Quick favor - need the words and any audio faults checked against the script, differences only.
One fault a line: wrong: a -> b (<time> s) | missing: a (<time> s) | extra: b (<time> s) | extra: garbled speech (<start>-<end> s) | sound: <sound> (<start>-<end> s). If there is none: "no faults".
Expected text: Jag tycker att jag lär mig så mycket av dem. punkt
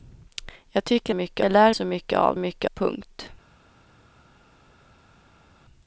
wrong: att -> mycket (1.1 s)
missing: mig (1.7 s)
wrong: dem -> mycket (2.4 s)